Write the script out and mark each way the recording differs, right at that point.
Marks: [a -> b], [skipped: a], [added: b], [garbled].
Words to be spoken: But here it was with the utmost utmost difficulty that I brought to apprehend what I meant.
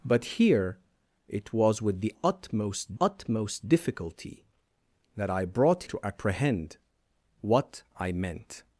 But here it was with the utmost utmost difficulty that I brought to apprehend what I meant.